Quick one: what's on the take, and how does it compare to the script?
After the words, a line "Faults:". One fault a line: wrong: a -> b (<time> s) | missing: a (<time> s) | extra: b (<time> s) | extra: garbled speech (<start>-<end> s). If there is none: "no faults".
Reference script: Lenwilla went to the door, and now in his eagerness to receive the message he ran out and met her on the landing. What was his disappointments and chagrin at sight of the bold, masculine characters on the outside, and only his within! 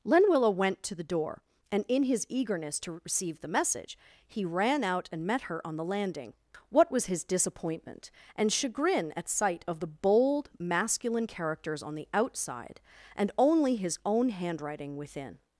Lenwilla went to the door, and in his eagerness to receive the message he ran out and met her on the landing. What was his disappointment and chagrin at sight of the bold, masculine characters on the outside, and only his own handwriting within!
Faults:
missing: now (1.8 s)
wrong: disappointments -> disappointment (7.2 s)
extra: own handwriting (14.0 s)